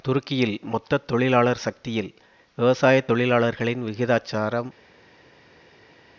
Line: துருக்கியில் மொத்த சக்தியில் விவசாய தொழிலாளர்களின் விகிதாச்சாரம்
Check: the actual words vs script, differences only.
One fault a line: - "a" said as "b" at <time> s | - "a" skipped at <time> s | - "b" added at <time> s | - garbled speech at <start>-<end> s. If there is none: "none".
- "தொழிலாளர்" added at 1.0 s